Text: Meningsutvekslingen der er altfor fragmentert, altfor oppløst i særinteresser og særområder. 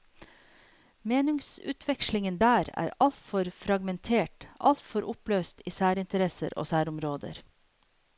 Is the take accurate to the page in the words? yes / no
yes